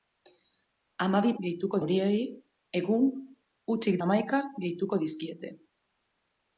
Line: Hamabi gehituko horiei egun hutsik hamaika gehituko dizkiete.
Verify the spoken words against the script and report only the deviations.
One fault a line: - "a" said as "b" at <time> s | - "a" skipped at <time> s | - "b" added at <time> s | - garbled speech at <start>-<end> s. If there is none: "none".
none